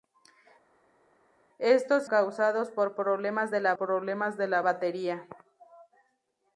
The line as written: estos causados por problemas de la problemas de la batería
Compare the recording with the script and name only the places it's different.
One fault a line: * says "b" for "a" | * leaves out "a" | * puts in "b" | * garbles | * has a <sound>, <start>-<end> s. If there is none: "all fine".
all fine